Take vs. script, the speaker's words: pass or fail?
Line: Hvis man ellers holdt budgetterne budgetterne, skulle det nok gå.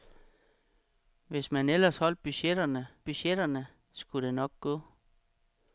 pass